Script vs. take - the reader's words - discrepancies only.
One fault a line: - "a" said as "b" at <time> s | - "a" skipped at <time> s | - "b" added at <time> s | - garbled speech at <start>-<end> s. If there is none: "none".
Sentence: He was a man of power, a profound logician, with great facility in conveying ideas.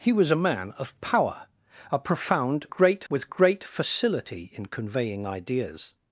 - "logician" said as "great" at 2.7 s